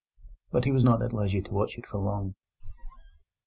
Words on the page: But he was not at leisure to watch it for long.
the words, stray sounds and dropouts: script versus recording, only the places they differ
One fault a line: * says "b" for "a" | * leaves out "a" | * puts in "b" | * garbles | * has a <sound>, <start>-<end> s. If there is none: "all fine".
* has a squeak, 2.6-3.2 s